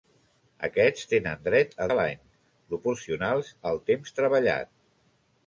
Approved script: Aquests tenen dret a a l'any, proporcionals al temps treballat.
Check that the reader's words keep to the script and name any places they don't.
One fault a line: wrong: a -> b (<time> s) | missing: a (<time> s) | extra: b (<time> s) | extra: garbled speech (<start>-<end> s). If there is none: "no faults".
no faults